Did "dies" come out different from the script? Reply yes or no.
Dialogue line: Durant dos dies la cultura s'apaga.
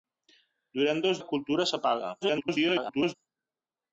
yes